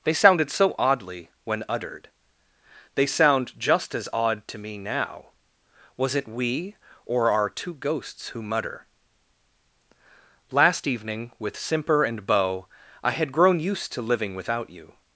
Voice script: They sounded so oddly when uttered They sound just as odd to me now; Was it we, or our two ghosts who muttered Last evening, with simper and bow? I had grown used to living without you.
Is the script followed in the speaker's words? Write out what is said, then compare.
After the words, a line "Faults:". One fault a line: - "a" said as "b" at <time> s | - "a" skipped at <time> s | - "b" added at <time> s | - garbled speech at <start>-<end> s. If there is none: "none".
They sounded so oddly when uttered They sound just as odd to me now; Was it we, or our two ghosts who mutter Last evening, with simper and bow? I had grown used to living without you.
Faults:
- "muttered" said as "mutter" at 8.4 s